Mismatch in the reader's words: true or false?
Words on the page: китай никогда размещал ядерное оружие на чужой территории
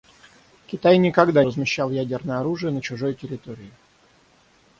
false